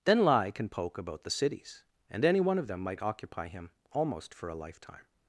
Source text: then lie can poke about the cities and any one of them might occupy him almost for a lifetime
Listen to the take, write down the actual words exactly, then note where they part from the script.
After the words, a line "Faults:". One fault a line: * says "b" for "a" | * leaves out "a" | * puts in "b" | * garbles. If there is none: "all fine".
then lie can poke about the cities and any one of them might occupy him almost for a lifetime
Faults:
all fine